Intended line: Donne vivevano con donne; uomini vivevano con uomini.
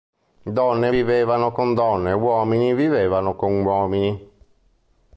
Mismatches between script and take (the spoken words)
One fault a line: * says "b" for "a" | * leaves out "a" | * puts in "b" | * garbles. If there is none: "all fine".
all fine